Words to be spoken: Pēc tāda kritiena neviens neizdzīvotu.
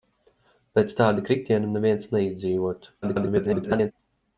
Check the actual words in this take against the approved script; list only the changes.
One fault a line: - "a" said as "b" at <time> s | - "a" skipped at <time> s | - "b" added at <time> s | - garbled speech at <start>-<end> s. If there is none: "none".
- garbled speech at 3.0-3.9 s